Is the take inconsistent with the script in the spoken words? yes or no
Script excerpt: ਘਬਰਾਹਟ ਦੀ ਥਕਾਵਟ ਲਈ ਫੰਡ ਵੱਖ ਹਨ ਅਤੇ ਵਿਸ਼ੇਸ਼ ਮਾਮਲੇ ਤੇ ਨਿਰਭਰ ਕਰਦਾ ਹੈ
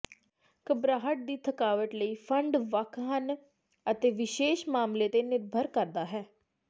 no